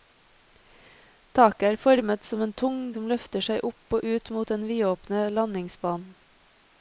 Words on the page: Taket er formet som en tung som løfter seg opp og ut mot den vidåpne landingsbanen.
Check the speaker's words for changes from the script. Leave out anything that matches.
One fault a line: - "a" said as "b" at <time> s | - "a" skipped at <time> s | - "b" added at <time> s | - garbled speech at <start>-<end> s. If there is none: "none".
none